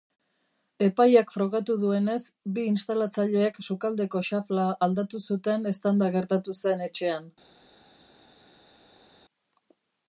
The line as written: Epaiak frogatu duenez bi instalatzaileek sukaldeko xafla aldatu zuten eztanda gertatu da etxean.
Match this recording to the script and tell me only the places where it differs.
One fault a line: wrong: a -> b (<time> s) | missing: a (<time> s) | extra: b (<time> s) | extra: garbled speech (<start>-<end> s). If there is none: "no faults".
wrong: da -> zen (6.6 s)